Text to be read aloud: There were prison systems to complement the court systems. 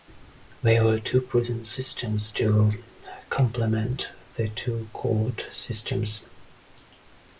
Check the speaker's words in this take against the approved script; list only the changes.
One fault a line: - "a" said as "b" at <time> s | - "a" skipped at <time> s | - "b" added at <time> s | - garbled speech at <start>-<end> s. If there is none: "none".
- "two" added at 1.0 s
- "two" added at 4.5 s